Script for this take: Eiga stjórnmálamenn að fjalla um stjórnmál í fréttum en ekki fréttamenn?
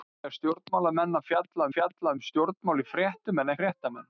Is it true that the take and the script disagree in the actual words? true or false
true